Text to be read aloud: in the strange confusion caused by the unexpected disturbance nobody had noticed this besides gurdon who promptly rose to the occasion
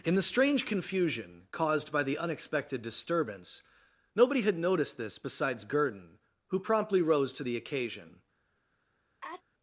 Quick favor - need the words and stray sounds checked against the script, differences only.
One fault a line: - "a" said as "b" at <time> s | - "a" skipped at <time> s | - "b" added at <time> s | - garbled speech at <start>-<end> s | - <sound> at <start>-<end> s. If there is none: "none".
- sneeze at 9.2-9.4 s